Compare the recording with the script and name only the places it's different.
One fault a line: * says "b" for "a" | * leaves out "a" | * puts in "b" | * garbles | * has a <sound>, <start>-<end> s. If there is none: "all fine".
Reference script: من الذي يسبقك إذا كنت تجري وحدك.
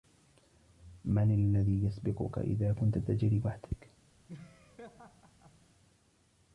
* has a laugh, 4.3-5.6 s